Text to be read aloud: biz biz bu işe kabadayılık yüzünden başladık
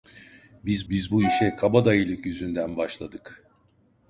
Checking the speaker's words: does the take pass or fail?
pass